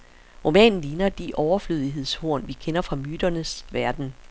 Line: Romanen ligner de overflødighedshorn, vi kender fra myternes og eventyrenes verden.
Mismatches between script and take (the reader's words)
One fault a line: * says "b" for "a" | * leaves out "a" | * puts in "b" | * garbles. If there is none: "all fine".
* leaves out "og eventyrenes"